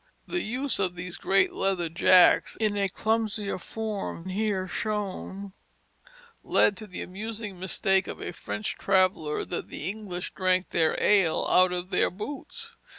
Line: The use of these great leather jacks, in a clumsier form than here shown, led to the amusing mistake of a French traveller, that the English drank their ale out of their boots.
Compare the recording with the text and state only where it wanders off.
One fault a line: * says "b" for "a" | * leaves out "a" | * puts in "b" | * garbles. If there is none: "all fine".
* leaves out "than"